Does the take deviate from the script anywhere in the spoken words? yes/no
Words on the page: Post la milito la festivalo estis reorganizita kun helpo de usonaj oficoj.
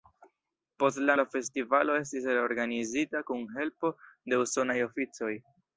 yes